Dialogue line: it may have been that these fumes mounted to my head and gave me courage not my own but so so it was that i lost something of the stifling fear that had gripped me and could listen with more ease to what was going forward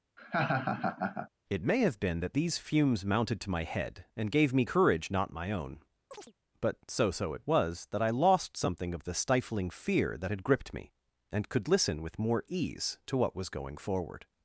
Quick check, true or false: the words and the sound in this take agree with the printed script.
false